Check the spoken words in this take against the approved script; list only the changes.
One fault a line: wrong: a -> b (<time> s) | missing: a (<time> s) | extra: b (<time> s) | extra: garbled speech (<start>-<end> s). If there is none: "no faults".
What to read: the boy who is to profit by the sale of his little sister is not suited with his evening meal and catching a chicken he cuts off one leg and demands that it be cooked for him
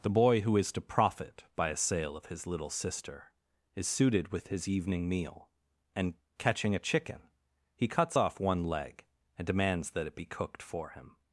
wrong: the -> a (1.7 s)
missing: not (3.9 s)